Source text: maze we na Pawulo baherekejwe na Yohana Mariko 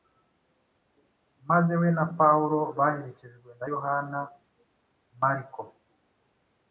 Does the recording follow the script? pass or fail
pass